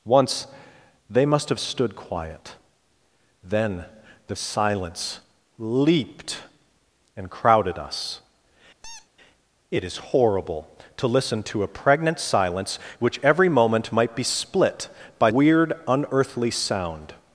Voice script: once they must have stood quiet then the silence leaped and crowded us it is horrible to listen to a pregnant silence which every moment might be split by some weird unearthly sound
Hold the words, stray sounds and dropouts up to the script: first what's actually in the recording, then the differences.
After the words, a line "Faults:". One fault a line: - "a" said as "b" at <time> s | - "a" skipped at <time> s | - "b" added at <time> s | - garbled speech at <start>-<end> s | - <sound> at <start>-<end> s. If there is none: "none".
once they must have stood quiet then the silence leaped and crowded us it is horrible to listen to a pregnant silence which every moment might be split by weird unearthly sound
Faults:
- squeak at 8.8-9.1 s
- "some" skipped at 15.3 s